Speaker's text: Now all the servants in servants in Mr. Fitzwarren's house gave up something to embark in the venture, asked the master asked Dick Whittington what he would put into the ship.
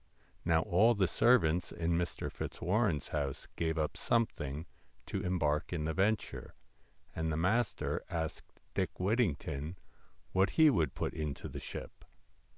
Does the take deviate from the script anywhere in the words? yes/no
yes